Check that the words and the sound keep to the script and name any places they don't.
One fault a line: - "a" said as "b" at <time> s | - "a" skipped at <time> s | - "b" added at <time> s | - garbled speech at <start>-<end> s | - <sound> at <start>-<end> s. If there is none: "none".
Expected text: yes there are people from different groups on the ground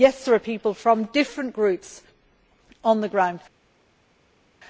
none